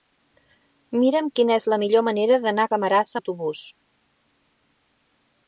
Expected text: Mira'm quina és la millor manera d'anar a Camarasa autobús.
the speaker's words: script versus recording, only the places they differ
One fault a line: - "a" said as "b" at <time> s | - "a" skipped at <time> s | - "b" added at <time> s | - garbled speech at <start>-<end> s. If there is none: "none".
none